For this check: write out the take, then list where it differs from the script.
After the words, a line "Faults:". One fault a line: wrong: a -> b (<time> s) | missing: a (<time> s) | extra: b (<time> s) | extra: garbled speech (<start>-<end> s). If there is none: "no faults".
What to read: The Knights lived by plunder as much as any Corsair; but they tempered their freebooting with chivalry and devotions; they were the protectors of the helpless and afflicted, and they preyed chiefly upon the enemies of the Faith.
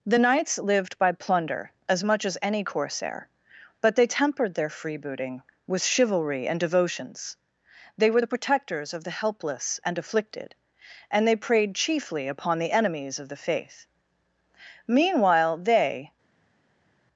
The Knights lived by plunder as much as any Corsair; but they tempered their freebooting with chivalry and devotions; they were the protectors of the helpless and afflicted, and they preyed chiefly upon the enemies of the Faith. Meanwhile they
Faults:
extra: Meanwhile they (14.9 s)